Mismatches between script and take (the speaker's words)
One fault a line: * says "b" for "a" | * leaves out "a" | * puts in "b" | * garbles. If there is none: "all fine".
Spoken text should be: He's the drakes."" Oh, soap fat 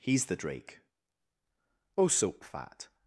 * says "drake" for "drakes"